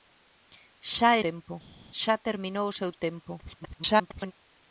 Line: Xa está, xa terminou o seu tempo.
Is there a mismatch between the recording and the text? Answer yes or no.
yes